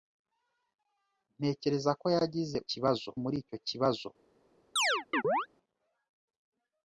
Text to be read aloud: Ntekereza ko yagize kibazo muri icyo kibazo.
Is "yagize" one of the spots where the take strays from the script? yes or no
no